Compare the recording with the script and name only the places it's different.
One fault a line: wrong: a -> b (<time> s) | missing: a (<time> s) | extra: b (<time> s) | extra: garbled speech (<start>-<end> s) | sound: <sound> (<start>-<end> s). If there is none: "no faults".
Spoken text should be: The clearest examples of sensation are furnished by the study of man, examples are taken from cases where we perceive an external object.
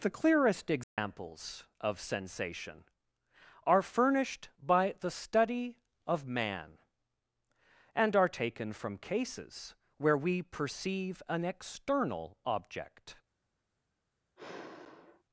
sound: dropout (0.8-1.0 s)
wrong: examples -> and (7.9 s)
sound: sigh (14.4-15.2 s)